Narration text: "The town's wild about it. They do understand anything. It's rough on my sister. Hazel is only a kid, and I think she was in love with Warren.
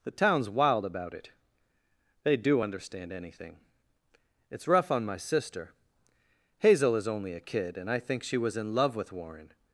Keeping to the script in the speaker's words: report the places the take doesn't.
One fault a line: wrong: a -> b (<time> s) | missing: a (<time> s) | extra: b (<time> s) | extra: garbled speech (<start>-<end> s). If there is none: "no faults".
no faults